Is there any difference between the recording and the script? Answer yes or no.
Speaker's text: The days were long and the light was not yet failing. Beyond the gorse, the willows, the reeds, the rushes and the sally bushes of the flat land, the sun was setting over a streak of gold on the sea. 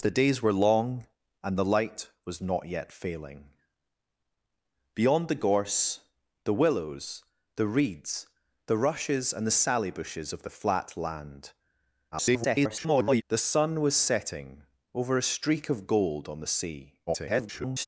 yes